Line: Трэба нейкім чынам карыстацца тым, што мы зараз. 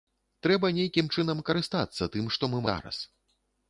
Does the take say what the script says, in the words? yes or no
yes